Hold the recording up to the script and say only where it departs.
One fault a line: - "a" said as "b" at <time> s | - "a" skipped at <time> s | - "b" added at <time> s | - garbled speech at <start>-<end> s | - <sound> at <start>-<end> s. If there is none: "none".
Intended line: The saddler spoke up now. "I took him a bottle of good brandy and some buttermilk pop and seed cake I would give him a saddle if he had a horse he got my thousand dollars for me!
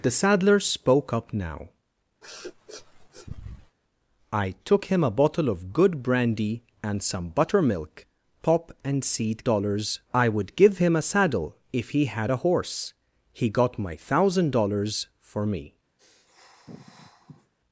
- sniff at 2.2-3.8 s
- "cake" said as "dollars" at 9.4 s
- sniff at 16.0-17.5 s